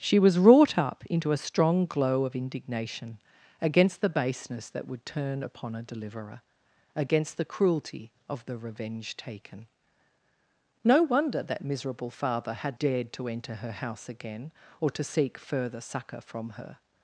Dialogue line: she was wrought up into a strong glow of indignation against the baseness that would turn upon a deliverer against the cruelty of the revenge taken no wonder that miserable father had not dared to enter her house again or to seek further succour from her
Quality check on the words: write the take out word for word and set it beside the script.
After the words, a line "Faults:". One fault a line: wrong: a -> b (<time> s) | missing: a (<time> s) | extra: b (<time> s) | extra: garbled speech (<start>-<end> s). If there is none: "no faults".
she was wrought up into a strong glow of indignation against the baseness that would turn upon a deliverer against the cruelty of the revenge taken no wonder that miserable father had dared to enter her house again or to seek further succour from her
Faults:
missing: not (12.8 s)